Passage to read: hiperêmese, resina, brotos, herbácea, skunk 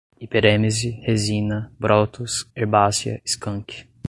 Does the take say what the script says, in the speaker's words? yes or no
yes